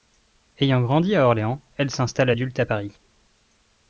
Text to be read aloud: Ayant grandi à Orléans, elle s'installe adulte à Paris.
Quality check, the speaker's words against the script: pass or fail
pass